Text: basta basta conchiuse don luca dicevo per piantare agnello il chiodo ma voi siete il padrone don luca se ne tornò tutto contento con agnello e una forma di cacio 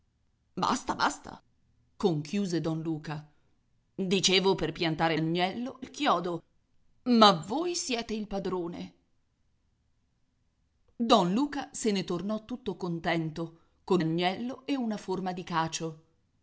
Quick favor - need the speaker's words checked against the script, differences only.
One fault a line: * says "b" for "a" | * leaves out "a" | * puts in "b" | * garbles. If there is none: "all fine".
all fine